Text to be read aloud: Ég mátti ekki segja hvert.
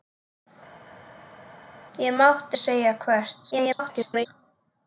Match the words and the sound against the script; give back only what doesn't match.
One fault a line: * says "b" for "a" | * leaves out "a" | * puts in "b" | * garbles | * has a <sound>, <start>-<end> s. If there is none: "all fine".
* leaves out "ekki"
* garbles